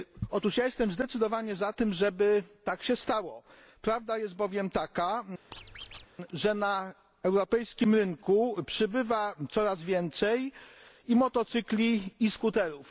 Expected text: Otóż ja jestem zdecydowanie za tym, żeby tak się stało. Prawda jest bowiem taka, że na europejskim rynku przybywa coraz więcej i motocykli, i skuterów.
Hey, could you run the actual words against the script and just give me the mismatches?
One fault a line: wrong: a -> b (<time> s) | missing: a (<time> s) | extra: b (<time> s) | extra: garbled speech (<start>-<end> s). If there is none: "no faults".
no faults